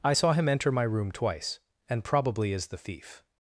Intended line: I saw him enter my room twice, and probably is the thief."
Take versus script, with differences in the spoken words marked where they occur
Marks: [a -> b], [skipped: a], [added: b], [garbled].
I saw him enter my room twice, and probably is the thief."